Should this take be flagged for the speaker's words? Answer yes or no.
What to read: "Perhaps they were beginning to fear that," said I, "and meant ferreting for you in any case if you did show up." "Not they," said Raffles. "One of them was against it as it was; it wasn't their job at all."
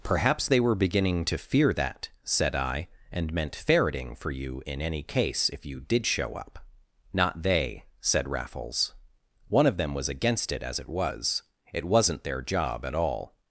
no